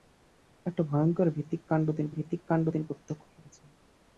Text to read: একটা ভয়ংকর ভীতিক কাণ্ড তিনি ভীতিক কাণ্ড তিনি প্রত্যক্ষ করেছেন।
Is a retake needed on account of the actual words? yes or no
no